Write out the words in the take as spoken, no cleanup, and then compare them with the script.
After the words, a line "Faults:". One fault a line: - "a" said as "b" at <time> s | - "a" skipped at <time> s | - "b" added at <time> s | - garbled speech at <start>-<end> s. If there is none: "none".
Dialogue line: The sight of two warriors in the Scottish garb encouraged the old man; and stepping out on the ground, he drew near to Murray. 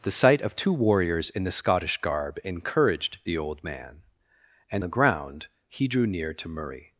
The sight of two warriors in the Scottish garb encouraged the old man; and the ground, he drew near to Murray.
Faults:
- "stepping out on" skipped at 4.8 s